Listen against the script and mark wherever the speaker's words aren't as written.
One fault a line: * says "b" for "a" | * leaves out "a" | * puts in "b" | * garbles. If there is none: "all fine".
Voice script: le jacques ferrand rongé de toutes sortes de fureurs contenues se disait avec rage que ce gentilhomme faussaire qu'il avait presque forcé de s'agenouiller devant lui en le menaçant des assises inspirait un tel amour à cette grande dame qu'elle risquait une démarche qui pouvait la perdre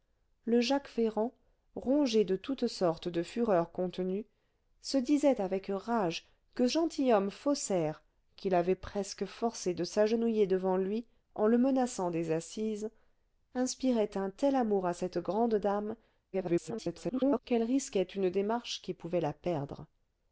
* leaves out "ce"
* garbles